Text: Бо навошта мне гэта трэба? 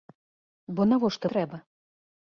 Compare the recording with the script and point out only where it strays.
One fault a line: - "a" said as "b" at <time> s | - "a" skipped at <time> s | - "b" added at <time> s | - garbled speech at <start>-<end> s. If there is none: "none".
- "мне гэта" skipped at 1.2 s